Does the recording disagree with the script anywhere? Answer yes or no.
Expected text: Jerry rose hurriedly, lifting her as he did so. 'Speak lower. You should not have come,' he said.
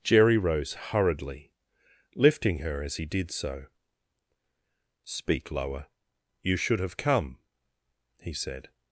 yes